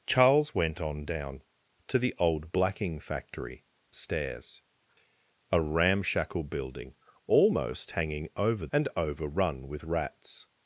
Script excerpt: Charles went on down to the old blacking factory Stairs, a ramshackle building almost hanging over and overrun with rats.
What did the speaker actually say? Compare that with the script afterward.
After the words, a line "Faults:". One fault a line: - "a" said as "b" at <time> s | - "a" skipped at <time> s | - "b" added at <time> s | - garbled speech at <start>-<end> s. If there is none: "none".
Charles went on down to the old blacking factory Stairs, a ramshackle building almost hanging over and overrun with rats.
Faults:
none